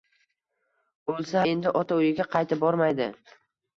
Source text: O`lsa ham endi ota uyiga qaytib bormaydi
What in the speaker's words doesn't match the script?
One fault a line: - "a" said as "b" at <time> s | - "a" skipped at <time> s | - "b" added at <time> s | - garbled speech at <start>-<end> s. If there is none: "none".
- "ham" skipped at 1.4 s